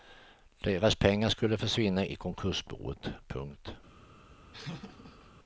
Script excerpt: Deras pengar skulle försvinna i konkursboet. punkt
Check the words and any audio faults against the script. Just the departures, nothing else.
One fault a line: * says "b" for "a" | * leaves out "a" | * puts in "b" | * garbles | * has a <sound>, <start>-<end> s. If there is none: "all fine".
* has a laugh, 4.5-5.3 s